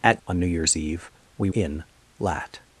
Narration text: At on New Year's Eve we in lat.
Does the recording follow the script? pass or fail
pass